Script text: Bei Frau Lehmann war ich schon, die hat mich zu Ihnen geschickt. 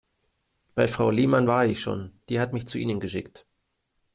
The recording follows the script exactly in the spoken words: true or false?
true